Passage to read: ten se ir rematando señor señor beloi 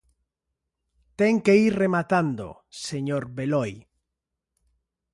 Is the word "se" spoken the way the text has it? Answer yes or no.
no